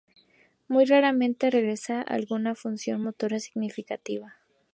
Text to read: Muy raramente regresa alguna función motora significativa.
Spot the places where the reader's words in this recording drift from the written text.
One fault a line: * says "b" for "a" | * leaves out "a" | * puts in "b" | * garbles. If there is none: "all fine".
all fine